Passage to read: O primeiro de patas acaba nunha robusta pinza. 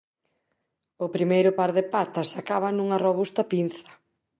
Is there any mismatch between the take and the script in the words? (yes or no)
yes